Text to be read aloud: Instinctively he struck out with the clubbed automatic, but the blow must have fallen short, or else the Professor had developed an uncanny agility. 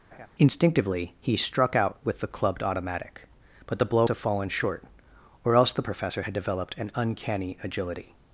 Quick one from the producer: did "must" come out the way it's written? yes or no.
no